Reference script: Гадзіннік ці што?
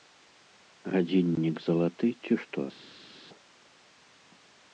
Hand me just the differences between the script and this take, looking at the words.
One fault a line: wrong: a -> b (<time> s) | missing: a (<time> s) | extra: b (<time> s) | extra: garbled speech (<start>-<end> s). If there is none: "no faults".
extra: залаты (1.7 s)